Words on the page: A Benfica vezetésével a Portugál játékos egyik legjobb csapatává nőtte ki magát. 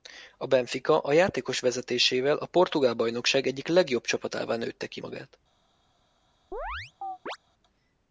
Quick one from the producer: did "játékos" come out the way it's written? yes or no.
no